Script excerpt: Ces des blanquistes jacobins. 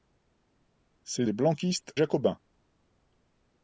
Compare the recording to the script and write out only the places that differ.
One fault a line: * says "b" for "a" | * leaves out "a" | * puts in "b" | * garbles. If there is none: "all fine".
all fine